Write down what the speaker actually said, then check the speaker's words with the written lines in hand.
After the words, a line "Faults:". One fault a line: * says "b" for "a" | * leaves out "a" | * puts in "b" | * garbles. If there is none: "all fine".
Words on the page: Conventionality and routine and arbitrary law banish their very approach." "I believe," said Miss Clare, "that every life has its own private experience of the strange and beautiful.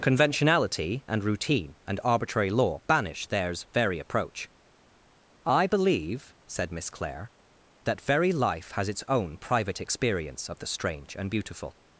Conventionality and routine and arbitrary law banish theirs very approach." "I believe," said Miss Clare, "that very life has its own private experience of the strange and beautiful.
Faults:
* says "theirs" for "their"
* says "very" for "every"